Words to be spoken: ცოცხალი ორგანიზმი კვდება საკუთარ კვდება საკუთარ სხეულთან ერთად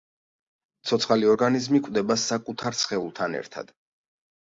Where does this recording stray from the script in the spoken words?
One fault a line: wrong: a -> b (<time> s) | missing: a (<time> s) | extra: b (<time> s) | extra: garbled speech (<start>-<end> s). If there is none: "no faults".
missing: კვდება საკუთარ (2.8 s)